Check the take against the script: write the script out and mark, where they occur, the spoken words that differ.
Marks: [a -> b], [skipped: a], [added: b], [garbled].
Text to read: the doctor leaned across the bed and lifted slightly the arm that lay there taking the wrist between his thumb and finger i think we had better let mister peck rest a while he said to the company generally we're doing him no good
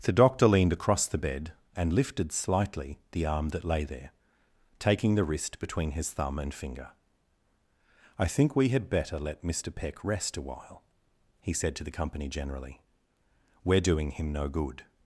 the doctor leaned across the bed and lifted slightly the arm that lay there taking the wrist between his thumb and finger i think we had better let mister peck rest a while he said to the company generally we're doing him no good